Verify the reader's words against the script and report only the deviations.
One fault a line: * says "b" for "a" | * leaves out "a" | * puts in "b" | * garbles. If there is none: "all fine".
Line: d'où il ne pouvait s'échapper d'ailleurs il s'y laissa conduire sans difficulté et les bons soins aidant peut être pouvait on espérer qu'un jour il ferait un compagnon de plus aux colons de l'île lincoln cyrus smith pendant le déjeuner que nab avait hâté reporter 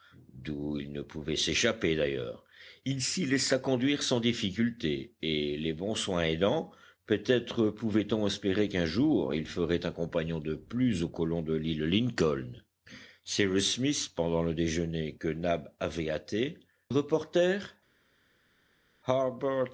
all fine